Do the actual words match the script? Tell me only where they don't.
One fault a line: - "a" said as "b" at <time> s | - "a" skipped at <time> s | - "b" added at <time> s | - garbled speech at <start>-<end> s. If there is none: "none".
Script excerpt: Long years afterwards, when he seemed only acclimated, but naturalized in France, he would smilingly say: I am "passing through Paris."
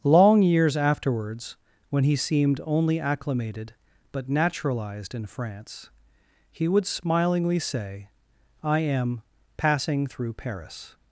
none